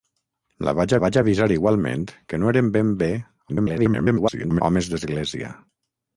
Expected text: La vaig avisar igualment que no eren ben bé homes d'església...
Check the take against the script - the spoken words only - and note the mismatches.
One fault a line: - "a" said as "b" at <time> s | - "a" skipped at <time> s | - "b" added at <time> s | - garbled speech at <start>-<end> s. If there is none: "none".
- "vaig" added at 1.0 s
- garbled speech at 3.5-4.6 s